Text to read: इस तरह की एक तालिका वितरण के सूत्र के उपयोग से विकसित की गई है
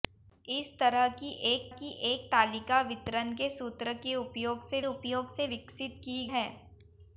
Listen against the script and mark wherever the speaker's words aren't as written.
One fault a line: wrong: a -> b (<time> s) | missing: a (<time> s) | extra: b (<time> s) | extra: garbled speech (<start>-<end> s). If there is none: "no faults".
extra: की एक (1.7 s)
extra: उपयोग से (4.9 s)
missing: गई (6.2 s)